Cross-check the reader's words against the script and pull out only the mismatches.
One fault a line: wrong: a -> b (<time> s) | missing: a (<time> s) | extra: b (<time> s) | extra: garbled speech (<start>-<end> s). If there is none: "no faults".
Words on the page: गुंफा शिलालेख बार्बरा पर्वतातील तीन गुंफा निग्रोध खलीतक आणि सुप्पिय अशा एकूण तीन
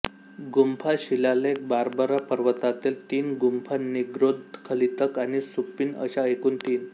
no faults